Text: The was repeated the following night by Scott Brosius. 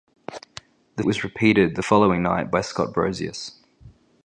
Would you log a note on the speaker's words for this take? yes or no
no